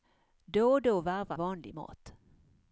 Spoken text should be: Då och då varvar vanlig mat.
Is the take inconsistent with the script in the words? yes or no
no